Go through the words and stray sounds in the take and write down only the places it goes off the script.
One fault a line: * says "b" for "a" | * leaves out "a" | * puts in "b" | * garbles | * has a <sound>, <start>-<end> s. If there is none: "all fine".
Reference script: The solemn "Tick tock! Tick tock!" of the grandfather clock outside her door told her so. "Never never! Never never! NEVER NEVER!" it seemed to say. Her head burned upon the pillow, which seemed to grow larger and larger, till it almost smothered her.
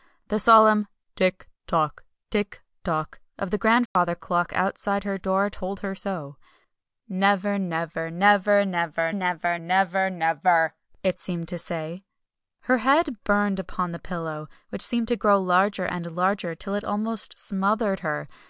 * has a dropout, 3.9-4.0 s
* puts in "NEVER"